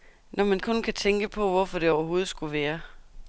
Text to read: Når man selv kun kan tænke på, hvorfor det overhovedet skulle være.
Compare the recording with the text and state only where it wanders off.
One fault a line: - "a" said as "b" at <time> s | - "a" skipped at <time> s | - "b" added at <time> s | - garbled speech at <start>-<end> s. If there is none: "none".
- "selv" skipped at 0.6 s